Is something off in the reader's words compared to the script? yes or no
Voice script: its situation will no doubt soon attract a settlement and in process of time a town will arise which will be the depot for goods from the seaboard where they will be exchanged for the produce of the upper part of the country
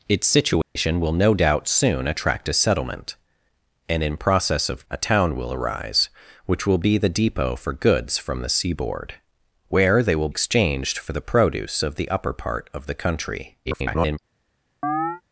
yes